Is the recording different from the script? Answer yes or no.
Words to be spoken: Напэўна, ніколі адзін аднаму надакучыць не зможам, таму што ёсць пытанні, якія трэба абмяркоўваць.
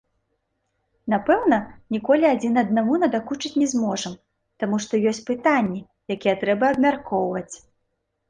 no